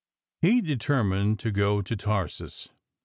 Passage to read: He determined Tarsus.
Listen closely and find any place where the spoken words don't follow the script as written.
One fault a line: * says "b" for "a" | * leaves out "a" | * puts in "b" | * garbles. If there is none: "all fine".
* puts in "to go to"